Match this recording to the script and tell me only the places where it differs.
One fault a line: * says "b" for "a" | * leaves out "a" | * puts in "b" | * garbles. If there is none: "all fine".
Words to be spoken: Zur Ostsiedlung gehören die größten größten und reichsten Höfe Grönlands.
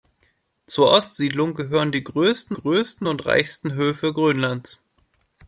all fine